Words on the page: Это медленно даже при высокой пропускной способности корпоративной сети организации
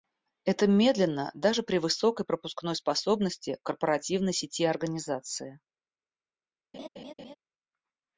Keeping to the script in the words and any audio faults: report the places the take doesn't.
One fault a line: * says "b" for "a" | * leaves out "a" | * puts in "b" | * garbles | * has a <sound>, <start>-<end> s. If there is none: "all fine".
* has a laugh, 6.7-7.4 s